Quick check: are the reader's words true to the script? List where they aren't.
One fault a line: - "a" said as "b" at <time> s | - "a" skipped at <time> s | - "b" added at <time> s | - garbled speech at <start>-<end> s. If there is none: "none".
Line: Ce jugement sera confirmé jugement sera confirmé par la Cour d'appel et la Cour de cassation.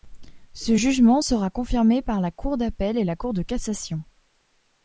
- "jugement sera confirmé" skipped at 2.0 s